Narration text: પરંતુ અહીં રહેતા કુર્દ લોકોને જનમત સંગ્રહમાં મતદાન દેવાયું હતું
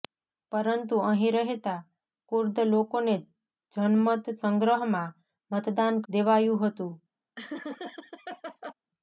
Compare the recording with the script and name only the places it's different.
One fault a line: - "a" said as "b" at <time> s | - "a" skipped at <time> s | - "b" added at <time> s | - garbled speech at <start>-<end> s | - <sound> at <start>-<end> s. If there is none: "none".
- laugh at 7.4-8.7 s